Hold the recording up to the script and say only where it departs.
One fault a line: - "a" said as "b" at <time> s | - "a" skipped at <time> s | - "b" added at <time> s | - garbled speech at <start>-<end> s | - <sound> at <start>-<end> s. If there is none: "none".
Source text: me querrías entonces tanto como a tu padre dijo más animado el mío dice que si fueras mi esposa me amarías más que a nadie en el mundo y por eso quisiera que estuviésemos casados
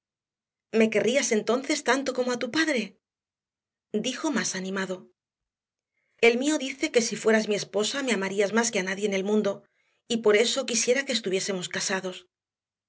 none